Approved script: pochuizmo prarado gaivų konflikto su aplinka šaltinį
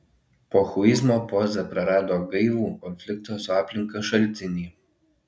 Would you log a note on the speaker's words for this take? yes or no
yes